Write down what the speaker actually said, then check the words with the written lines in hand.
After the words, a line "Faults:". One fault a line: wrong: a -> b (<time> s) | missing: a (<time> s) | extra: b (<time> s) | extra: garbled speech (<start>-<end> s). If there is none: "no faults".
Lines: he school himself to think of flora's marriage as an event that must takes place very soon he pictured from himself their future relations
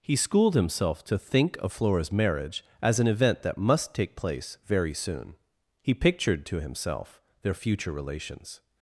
he schooled himself to think of flora's marriage as an event that must take place very soon he pictured to himself their future relations
Faults:
wrong: school -> schooled (0.1 s)
wrong: takes -> take (3.9 s)
wrong: from -> to (6.4 s)